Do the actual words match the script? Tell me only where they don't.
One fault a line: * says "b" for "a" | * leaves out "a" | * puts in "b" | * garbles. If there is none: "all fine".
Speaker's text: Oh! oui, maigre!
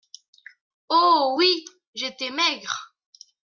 * puts in "j'étais"